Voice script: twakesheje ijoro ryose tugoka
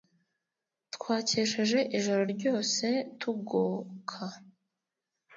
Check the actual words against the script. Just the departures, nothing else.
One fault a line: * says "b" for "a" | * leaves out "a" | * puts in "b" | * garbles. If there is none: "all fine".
all fine